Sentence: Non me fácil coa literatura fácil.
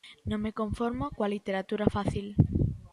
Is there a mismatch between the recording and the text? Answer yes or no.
yes